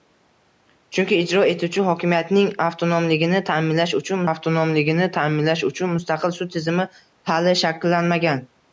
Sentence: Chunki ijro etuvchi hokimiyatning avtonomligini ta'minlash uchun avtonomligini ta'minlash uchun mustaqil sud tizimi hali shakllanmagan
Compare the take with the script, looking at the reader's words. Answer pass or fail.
pass